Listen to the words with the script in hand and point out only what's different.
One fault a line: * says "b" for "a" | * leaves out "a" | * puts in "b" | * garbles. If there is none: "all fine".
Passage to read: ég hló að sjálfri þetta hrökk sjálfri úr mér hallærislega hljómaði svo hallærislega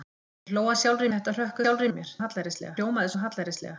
all fine